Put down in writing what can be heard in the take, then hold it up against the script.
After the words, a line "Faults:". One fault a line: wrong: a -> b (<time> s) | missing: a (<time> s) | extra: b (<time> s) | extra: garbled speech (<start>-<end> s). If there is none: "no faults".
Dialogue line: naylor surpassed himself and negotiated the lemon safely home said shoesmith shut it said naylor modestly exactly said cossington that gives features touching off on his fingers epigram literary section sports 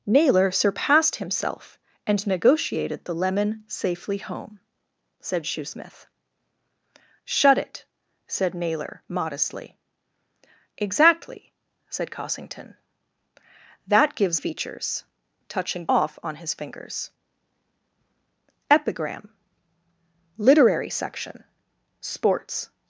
naylor surpassed himself and negotiated the lemon safely home said shoesmith shut it said naylor modestly exactly said cossington that gives features touching off on his fingers epigram literary section sports
Faults:
no faults